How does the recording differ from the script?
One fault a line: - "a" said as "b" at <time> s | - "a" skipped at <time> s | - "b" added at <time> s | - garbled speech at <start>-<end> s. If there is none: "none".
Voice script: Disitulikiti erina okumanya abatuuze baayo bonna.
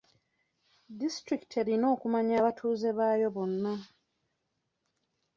none